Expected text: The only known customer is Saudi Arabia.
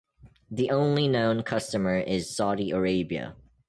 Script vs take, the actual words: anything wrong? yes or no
no